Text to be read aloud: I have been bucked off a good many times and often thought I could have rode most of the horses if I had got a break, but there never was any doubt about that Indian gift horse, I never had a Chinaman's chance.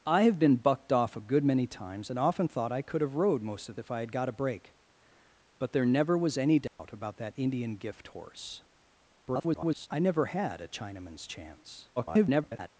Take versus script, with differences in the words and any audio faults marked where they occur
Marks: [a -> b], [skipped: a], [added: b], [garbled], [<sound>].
I have been bucked off a good many times and often thought I could have rode most of [skipped: the horses] if I had got a break, but there never was any doubt [dropout] about that Indian gift horse, [garbled] I never had a Chinaman's chance. [garbled]